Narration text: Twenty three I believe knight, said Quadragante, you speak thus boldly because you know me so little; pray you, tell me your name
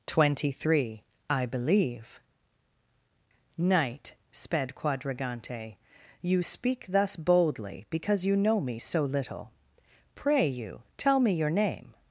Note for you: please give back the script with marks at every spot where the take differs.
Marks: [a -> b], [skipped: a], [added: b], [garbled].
Twenty three I believe knight, [said -> sped] Quadragante, you speak thus boldly because you know me so little; pray you, tell me your name